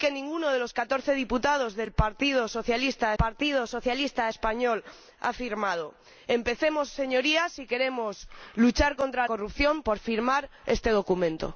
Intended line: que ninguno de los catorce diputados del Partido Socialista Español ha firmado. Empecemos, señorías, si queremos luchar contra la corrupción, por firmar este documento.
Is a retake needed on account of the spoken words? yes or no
yes